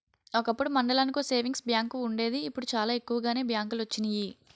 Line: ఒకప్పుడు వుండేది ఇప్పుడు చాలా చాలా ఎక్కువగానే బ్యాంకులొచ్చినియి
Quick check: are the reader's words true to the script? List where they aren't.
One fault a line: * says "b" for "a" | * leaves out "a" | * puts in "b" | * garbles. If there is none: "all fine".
* puts in "మండలానికో సేవింగ్స్ బ్యాంకు"
* leaves out "చాలా"